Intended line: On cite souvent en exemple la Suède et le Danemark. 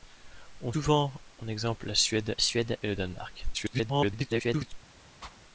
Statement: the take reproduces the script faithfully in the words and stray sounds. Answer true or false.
false